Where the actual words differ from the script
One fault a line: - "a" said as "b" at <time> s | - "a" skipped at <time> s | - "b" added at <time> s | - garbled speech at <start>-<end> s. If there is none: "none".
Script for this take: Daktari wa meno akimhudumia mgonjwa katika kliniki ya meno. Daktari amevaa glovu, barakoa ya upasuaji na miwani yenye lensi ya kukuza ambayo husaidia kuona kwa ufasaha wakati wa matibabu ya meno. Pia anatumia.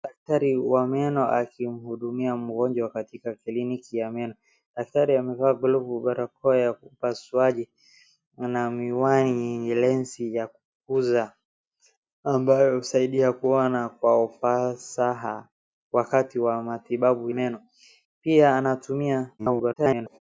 - "ya" skipped at 17.3 s
- garbled speech at 19.4-20.2 s